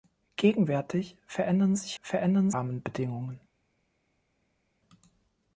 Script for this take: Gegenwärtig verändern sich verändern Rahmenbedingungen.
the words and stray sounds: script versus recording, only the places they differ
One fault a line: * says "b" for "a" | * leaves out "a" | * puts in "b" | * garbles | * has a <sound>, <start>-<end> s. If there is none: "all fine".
all fine